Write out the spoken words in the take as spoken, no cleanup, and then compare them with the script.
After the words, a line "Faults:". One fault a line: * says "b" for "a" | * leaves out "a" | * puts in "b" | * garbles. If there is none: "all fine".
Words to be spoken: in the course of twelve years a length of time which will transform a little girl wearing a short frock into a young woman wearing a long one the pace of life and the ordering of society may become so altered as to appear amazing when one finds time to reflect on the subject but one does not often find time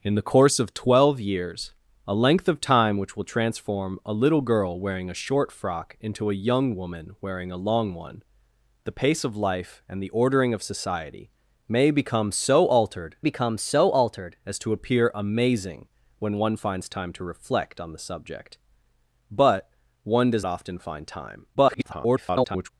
in the course of twelve years a length of time which will transform a little girl wearing a short frock into a young woman wearing a long one the pace of life and the ordering of society may become so altered become so altered as to appear amazing when one finds time to reflect on the subject but one does often find time [garbled]
Faults:
* puts in "become so altered"
* leaves out "not"
* garbles